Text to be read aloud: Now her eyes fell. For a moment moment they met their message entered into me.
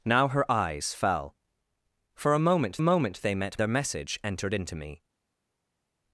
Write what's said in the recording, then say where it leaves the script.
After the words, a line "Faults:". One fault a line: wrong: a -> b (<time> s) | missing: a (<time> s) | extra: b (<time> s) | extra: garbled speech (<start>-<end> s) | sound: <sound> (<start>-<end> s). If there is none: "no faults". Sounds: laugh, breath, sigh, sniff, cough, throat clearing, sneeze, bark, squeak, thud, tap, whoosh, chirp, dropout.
Now her eyes fell. For a moment moment they met their message entered into me.
Faults:
no faults